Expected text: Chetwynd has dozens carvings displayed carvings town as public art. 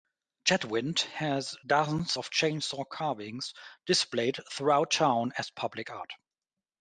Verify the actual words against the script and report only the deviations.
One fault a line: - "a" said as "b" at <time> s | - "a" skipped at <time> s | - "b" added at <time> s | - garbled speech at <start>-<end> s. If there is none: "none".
- "of chainsaw" added at 2.1 s
- "carvings" said as "throughout" at 4.5 s